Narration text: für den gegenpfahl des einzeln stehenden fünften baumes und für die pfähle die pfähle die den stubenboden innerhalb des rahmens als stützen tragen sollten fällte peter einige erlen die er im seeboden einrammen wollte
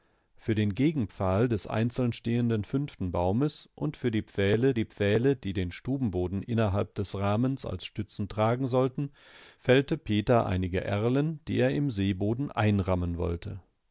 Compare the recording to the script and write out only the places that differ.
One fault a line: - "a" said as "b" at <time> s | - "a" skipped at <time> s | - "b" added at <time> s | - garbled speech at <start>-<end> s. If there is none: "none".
none